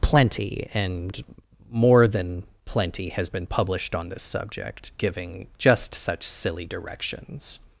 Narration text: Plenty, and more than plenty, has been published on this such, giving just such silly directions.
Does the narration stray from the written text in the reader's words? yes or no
yes